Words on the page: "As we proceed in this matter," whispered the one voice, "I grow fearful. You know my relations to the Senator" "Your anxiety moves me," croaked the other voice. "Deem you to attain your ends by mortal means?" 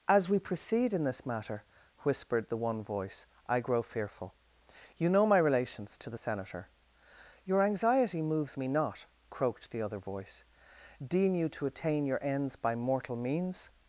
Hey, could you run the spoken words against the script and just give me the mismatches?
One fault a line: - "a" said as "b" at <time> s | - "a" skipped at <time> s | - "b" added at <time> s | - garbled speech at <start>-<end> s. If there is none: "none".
- "not" added at 8.7 s